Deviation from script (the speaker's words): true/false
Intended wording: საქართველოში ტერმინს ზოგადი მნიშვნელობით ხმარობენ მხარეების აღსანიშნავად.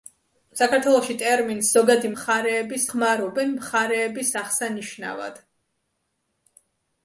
true